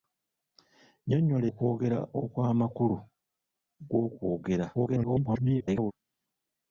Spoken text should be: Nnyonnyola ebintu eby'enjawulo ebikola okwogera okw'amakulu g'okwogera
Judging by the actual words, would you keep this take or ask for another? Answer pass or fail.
fail